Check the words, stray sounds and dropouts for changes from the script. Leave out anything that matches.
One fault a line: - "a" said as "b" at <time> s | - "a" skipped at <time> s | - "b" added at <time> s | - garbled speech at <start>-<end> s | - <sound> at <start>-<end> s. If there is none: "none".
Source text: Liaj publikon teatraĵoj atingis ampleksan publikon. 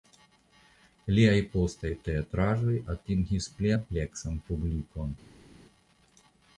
- "publikon" said as "postaj" at 1.6 s
- "pli" added at 3.6 s